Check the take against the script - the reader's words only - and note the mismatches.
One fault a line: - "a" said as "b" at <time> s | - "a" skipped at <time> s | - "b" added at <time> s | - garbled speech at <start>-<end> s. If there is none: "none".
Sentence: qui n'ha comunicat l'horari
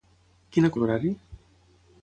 - "comunicat" skipped at 0.7 s